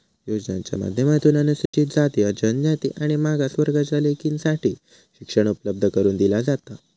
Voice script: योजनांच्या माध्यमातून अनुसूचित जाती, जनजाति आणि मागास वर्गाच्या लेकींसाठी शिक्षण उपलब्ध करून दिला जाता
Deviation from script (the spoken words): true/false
false